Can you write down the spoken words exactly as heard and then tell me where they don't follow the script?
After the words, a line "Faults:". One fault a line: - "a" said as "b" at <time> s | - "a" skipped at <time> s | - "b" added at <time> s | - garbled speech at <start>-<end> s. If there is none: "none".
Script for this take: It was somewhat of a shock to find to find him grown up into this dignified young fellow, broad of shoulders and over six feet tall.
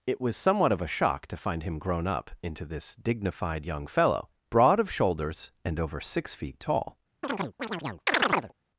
It was somewhat of a shock to find him grown up into this dignified young fellow, broad of shoulders and over six feet tall.
Faults:
- "to find" skipped at 1.6 s